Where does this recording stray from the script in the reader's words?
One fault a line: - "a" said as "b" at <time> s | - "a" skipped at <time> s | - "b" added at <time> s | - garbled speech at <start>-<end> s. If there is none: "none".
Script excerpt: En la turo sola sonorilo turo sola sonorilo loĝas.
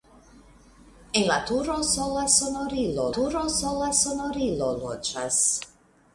none